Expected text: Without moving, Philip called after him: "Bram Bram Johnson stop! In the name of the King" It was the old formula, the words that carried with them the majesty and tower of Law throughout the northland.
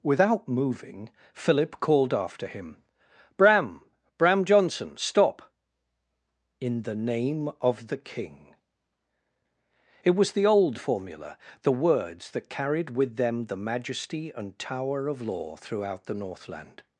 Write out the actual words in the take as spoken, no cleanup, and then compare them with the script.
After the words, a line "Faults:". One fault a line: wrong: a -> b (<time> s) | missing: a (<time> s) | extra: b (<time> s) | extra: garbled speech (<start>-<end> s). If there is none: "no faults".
Without moving, Philip called after him: "Bram Bram Johnson stop! In the name of the King" It was the old formula, the words that carried with them the majesty and tower of Law throughout the northland.
Faults:
no faults